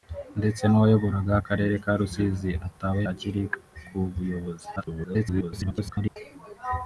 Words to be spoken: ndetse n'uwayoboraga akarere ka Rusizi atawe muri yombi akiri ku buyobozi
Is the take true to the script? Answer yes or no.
no